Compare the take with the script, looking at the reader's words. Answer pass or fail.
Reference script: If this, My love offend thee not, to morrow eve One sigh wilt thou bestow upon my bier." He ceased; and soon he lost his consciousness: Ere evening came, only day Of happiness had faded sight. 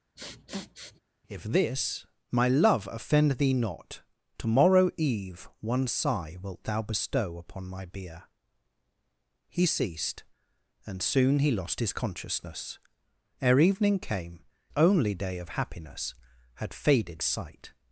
pass